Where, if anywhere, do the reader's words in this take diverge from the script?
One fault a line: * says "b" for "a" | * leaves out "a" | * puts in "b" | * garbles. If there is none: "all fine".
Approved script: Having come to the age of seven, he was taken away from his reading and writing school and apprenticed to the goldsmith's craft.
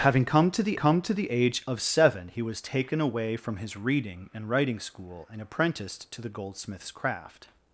* puts in "come to the"